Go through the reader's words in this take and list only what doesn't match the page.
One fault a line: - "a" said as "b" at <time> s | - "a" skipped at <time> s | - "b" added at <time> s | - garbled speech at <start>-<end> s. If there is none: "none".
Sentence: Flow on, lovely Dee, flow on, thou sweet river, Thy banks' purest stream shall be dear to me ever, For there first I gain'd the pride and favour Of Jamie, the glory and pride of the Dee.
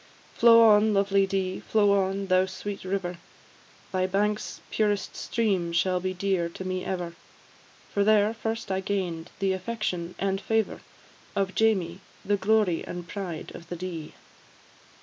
- "pride" said as "affection" at 9.5 s